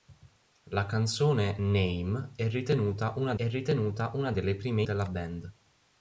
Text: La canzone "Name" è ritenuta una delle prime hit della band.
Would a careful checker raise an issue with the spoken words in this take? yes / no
yes